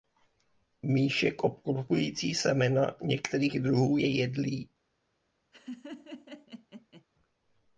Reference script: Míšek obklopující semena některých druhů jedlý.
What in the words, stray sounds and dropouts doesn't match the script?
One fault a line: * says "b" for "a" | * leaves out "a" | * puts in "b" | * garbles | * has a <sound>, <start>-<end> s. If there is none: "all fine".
* puts in "je"
* has a laugh, 5.5-7.0 s